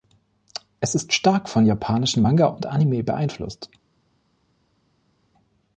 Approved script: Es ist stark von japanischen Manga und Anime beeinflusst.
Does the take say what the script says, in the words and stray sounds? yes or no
yes